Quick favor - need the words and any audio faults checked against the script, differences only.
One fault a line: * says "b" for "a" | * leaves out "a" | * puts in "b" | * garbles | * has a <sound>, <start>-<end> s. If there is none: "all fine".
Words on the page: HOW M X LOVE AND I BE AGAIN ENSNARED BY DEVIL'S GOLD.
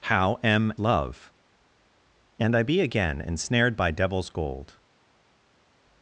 * leaves out "X"